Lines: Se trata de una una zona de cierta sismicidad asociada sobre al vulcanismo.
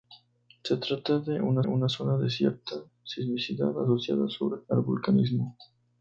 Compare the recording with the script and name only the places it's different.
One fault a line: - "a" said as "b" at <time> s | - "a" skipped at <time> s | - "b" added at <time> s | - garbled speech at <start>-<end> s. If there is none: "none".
none